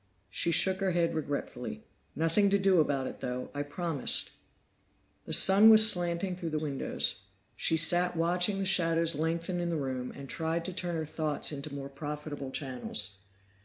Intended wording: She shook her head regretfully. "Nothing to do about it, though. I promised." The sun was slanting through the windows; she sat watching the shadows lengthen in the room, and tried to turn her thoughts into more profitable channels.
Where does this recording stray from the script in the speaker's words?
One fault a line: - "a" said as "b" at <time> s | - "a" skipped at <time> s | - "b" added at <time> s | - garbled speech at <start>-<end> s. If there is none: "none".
none